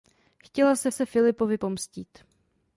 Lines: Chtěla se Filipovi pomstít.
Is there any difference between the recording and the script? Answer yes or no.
yes